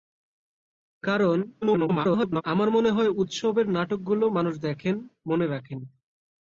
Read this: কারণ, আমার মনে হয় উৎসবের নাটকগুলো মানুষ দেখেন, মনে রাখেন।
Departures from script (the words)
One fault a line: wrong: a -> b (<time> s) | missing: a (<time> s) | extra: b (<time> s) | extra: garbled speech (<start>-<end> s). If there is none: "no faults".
extra: garbled speech (1.6-2.4 s)